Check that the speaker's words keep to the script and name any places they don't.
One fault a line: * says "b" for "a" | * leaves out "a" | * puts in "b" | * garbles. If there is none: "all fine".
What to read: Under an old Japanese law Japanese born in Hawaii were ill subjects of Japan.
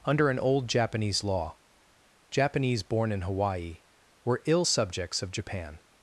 all fine